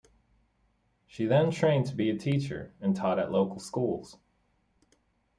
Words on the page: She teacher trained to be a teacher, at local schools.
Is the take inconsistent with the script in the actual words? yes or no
yes